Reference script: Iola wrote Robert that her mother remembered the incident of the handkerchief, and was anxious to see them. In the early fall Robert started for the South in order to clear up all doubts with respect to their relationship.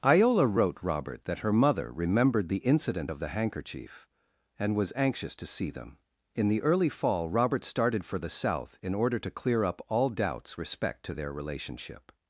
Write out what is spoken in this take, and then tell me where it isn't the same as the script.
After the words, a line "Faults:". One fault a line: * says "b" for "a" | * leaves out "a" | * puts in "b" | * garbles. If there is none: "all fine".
Iola wrote Robert that her mother remembered the incident of the handkerchief, and was anxious to see them. In the early fall Robert started for the South in order to clear up all doubts respect to their relationship.
Faults:
* leaves out "with"